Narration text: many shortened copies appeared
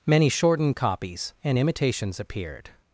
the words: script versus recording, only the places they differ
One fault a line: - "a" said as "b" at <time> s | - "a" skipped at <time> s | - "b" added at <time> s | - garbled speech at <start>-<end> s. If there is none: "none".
- "and imitations" added at 1.4 s